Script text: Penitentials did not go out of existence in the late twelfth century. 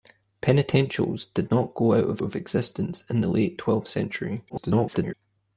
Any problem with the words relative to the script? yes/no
yes